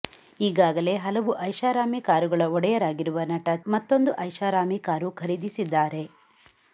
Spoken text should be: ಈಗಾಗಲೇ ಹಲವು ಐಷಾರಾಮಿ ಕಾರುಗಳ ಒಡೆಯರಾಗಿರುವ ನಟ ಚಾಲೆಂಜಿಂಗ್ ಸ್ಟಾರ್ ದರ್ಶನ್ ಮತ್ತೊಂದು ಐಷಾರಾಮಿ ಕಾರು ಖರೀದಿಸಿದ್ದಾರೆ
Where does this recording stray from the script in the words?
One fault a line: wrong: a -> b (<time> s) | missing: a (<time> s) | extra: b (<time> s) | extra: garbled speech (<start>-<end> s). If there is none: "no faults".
missing: ಚಾಲೆಂಜಿಂಗ್ ಸ್ಟಾರ್ ದರ್ಶನ್ (3.5 s)